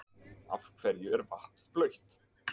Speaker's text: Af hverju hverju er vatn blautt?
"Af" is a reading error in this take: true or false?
false